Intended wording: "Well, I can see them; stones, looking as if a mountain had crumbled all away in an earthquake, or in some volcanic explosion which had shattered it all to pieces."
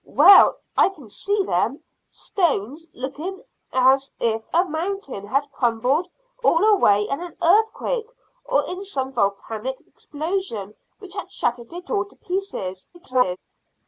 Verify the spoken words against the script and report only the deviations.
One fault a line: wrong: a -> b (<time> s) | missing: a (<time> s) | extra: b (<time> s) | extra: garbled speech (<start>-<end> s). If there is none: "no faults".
extra: garbled speech (12.9-13.4 s)